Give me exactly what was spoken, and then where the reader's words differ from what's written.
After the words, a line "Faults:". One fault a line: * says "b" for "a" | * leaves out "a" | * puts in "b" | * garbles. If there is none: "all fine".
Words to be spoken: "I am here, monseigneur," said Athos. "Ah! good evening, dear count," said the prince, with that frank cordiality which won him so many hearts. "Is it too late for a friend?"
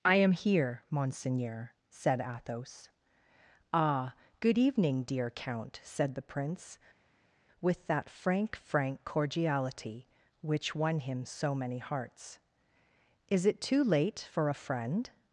"I am here, monseigneur," said Athos. "Ah! good evening, dear count," said the prince, with that frank frank cordiality which won him so many hearts. "Is it too late for a friend?"
Faults:
* puts in "frank"